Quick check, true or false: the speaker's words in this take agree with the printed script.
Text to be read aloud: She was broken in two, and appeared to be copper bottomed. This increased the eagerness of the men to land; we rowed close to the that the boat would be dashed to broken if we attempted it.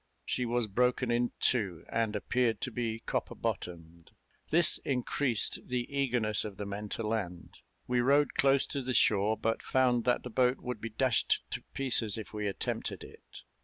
false